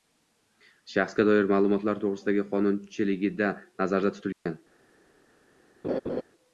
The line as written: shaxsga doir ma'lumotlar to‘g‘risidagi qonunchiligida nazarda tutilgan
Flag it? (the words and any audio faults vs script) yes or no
yes